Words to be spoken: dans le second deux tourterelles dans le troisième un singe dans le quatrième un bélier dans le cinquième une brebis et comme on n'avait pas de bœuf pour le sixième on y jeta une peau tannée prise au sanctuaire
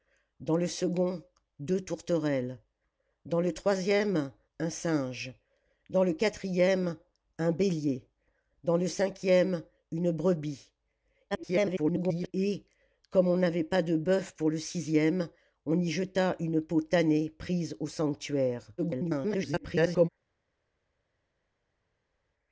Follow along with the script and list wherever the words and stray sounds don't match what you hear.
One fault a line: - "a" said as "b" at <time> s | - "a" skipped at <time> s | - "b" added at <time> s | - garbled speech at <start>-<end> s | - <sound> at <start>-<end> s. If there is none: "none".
- garbled speech at 11.3-12.3 s
- garbled speech at 18.8-20.1 s